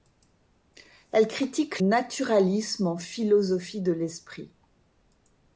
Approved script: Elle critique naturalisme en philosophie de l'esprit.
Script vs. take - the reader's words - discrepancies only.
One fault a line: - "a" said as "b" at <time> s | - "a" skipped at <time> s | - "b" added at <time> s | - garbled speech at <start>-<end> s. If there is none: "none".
none